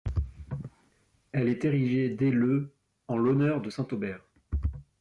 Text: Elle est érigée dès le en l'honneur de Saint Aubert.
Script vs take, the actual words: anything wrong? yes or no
no